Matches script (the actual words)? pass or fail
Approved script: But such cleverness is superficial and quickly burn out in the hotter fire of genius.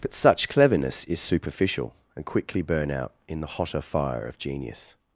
pass